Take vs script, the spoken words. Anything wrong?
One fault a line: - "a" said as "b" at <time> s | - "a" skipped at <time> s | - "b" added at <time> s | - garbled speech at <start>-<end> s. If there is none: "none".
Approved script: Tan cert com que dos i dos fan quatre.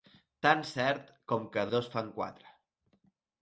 - "dos" skipped at 1.7 s